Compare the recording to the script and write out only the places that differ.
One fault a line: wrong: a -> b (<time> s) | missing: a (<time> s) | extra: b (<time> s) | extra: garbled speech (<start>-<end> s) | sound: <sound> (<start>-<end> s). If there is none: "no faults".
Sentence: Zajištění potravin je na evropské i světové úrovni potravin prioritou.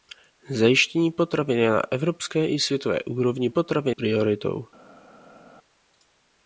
no faults